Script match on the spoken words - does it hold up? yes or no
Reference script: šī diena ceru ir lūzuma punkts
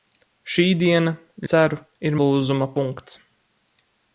yes